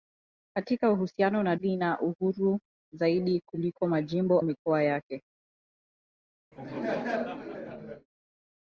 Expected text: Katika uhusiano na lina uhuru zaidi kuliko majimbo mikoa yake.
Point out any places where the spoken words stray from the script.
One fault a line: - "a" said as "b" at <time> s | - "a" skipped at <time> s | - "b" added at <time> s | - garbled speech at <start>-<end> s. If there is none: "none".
none